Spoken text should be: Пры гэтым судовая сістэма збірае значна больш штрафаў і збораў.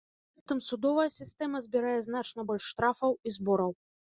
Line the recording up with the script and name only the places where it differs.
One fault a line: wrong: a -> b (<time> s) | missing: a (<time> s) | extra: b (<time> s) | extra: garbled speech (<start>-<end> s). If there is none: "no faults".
no faults